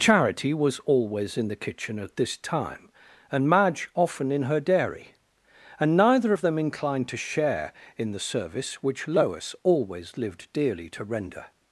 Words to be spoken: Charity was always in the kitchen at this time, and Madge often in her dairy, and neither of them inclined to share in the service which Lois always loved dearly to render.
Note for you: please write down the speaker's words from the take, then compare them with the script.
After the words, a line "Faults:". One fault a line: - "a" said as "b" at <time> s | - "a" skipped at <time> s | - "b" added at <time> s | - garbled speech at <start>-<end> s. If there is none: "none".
Charity was always in the kitchen at this time, and Madge often in her dairy, and neither of them inclined to share in the service which Lois always lived dearly to render.
Faults:
- "loved" said as "lived" at 10.2 s